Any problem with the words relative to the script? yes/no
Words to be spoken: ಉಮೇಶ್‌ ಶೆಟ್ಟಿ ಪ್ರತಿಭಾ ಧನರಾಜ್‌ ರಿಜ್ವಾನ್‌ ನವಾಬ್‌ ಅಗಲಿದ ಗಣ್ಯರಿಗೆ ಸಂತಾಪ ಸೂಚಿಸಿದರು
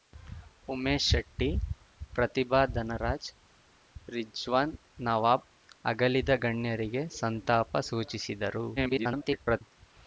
yes